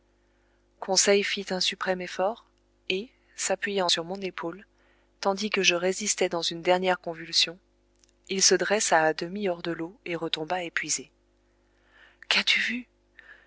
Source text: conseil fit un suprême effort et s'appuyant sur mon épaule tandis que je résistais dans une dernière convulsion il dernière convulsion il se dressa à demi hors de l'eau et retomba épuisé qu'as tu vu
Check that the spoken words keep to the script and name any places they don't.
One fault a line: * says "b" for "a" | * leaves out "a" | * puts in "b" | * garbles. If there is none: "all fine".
* leaves out "dernière convulsion il"